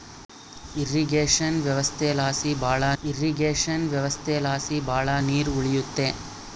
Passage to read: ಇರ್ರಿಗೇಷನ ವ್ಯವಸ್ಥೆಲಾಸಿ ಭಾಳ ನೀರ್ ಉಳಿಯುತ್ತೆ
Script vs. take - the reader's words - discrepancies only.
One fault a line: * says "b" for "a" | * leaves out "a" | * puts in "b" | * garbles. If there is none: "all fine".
* puts in "ಇರ್ರಿಗೇಷನ ವ್ಯವಸ್ಥೆಲಾಸಿ ಭಾಳ"